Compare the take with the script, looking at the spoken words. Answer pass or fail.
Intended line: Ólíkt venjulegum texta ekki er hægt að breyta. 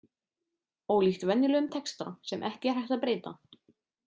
fail